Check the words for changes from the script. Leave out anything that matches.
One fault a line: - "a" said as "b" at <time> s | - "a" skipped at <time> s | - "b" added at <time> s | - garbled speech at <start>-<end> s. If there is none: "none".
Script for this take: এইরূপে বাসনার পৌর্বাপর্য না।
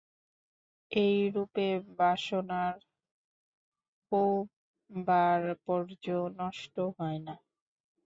- "নষ্ট হয়" added at 6.4 s